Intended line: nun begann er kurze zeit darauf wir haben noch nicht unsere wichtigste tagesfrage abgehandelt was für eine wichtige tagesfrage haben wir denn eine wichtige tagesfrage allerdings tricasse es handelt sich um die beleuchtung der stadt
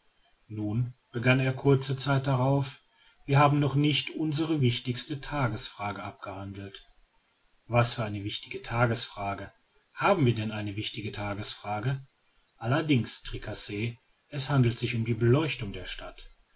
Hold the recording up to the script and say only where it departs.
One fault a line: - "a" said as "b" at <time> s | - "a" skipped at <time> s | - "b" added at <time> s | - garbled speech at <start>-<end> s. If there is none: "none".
none